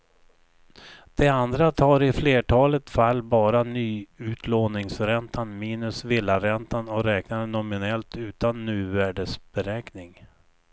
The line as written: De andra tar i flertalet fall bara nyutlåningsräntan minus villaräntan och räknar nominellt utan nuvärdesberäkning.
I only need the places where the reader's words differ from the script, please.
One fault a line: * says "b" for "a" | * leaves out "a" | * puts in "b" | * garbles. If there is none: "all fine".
all fine